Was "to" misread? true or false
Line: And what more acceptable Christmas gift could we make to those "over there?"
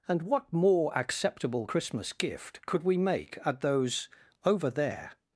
true